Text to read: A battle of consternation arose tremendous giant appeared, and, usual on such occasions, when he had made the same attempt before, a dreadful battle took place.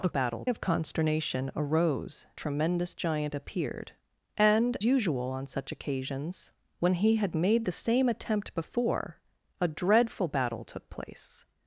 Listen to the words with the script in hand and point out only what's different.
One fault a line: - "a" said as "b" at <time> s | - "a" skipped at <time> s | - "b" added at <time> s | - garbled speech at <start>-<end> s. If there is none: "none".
none